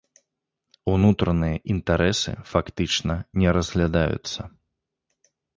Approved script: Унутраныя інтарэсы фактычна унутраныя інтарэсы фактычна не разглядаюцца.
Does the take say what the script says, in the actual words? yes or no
no